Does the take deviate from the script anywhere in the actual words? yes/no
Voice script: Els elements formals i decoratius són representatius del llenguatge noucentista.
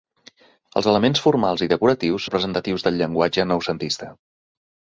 yes